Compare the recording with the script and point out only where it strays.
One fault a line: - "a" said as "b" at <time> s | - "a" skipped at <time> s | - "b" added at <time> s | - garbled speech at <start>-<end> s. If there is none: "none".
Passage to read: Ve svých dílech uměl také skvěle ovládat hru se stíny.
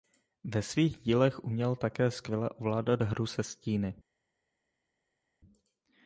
none